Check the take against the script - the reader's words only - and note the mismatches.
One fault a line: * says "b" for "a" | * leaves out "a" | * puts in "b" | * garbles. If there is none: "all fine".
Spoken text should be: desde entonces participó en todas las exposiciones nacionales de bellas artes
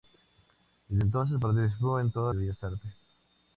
* leaves out "las exposiciones nacionales"